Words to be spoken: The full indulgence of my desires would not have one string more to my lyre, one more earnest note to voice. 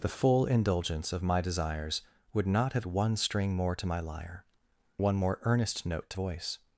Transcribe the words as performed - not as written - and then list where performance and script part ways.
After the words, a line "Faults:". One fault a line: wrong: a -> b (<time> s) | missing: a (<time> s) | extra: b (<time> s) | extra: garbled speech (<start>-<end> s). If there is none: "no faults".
The full indulgence of my desires would not have one string more to my lyre, one more earnest note to voice.
Faults:
no faults